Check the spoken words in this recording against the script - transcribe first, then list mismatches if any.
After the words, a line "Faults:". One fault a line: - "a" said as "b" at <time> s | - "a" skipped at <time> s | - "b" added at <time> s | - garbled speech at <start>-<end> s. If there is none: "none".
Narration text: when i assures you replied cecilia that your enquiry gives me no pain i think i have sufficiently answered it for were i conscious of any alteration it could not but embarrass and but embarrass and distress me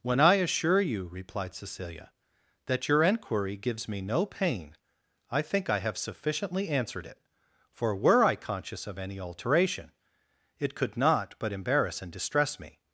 when i assure you replied cecilia that your enquiry gives me no pain i think i have sufficiently answered it for were i conscious of any alteration it could not but embarrass and distress me
Faults:
- "assures" said as "assure" at 0.3 s
- "but embarrass and" skipped at 12.1 s